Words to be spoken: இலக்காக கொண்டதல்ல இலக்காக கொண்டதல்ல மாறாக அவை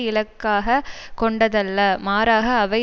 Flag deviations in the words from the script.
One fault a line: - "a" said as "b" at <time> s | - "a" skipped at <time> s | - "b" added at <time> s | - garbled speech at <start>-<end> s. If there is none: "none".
- "இலக்காக கொண்டதல்ல" skipped at 1.8 s